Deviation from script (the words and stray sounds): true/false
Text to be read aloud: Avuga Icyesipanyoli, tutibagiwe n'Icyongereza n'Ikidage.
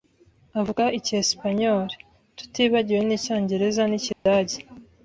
true